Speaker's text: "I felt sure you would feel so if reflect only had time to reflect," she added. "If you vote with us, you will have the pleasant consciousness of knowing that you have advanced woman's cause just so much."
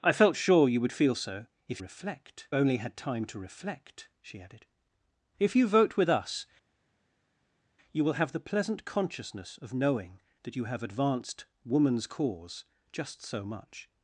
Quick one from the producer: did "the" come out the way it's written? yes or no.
yes